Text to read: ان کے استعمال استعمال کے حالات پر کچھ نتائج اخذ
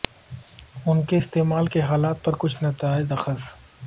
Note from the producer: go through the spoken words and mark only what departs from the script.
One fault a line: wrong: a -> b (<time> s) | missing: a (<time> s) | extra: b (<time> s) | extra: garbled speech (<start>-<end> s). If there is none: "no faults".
missing: استعمال (1.7 s)